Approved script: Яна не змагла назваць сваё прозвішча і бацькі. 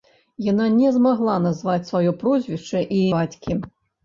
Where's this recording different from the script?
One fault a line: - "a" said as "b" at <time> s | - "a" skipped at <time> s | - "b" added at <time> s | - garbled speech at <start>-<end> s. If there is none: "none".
none